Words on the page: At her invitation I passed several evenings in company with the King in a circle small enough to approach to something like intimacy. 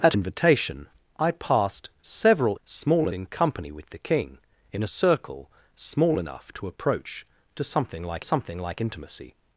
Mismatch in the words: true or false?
true